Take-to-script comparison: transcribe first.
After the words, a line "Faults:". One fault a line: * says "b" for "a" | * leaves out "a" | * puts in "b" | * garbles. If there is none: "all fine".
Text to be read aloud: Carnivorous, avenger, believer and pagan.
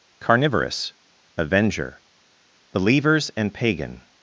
Carnivorous, avenger, believers and pagan.
Faults:
* says "believers" for "believer"